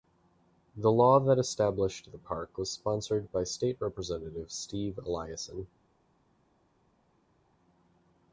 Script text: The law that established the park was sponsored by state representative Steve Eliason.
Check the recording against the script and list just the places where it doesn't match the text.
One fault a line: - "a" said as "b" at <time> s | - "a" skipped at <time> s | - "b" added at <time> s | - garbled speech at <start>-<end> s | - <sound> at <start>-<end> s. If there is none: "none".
none